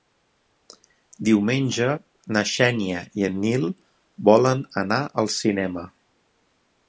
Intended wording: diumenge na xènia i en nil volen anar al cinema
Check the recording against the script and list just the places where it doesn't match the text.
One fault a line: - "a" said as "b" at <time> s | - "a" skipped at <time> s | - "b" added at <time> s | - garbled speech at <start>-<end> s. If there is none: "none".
none